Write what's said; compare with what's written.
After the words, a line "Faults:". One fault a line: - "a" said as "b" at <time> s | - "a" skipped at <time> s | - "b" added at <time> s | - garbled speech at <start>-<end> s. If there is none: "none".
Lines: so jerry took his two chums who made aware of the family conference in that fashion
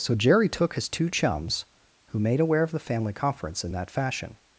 so jerry took his two chums who made aware of the family conference in that fashion
Faults:
none